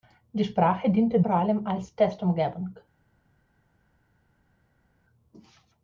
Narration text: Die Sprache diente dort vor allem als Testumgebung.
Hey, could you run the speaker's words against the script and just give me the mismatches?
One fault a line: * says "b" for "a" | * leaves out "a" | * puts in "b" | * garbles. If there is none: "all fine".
* leaves out "dort"